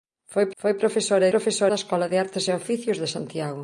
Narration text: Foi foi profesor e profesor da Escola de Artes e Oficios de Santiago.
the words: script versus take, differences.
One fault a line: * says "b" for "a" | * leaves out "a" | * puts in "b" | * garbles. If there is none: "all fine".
all fine